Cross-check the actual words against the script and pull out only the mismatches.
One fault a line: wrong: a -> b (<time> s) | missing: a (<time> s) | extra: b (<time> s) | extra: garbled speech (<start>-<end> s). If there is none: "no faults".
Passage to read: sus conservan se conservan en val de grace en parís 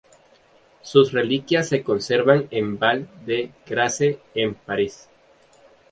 wrong: conservan -> reliquias (1.1 s)